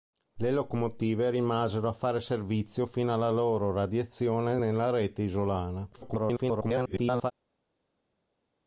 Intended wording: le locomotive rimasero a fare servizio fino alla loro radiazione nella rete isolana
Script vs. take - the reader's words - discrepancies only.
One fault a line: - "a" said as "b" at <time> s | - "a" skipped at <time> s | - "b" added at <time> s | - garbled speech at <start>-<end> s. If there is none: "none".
- garbled speech at 5.9-7.3 s